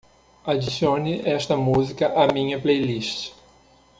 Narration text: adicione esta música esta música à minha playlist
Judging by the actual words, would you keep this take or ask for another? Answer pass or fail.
fail